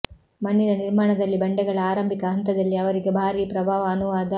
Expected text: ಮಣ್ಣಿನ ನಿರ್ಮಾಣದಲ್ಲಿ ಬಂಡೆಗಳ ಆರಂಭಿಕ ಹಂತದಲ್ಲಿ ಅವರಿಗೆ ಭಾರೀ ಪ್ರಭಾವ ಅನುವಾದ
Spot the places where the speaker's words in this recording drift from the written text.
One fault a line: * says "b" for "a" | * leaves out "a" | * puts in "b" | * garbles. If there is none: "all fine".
all fine